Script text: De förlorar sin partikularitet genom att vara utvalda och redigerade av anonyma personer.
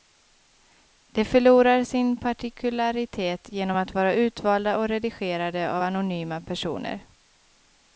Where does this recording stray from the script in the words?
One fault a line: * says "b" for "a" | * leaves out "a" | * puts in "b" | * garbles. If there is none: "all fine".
all fine